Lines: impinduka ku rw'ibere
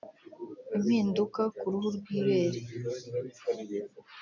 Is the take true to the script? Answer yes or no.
no